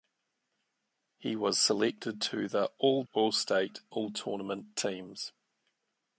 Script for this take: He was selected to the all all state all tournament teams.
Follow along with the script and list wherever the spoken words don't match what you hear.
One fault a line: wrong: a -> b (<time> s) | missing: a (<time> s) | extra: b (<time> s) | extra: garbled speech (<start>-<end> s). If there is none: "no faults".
no faults